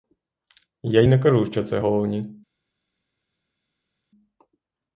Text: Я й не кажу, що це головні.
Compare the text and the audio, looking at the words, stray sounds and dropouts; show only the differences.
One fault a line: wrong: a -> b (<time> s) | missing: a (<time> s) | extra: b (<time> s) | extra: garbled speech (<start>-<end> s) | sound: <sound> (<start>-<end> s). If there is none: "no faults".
no faults